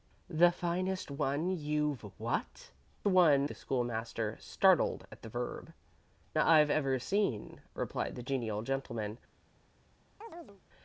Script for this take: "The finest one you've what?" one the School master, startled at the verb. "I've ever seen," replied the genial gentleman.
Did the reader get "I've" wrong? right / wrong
right